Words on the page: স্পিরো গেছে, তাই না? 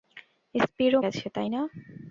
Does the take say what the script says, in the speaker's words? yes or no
yes